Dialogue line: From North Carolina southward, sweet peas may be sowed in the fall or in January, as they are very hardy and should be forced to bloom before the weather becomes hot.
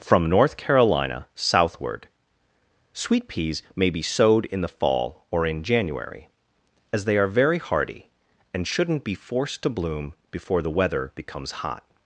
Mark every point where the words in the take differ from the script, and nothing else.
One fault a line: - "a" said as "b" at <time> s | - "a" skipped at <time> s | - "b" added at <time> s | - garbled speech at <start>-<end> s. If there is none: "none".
- "should" said as "shouldn't" at 8.7 s